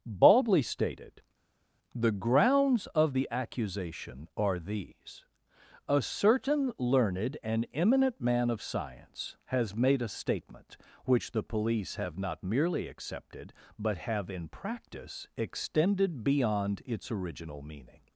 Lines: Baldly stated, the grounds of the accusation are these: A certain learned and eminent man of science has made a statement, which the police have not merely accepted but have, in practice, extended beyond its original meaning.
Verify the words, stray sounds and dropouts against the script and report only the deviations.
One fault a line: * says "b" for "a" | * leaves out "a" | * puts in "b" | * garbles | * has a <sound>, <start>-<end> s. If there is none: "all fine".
all fine